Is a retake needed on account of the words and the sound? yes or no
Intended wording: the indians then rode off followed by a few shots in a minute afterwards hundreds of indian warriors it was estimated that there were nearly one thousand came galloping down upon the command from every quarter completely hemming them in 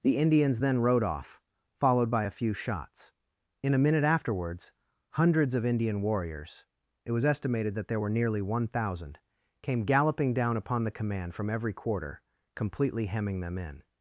no